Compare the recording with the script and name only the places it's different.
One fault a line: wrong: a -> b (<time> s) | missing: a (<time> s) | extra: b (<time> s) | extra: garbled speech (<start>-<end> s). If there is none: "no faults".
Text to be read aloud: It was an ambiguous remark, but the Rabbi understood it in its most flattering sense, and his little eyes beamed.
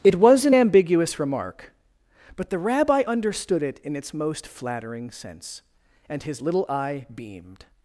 wrong: eyes -> eye (6.7 s)